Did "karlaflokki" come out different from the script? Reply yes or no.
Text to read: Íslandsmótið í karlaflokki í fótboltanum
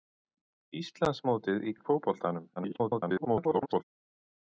yes